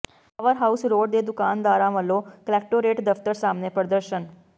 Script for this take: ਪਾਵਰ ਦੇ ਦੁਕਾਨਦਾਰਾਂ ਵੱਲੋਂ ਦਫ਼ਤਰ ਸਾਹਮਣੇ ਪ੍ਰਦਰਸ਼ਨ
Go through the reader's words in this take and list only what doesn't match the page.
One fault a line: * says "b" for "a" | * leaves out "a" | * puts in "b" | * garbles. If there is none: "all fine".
* puts in "ਹਾਊਸ ਰੋਡ"
* puts in "ਕਲੈਕਟੋਰੇਟ"